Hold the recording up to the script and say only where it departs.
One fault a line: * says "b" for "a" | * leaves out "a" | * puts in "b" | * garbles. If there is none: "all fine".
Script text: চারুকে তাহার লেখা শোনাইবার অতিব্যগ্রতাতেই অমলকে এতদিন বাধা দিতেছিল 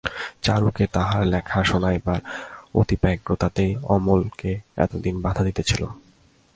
all fine